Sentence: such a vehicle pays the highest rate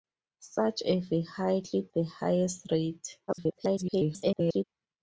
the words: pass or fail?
fail